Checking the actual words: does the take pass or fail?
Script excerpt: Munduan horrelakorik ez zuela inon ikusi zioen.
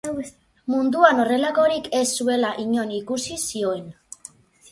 pass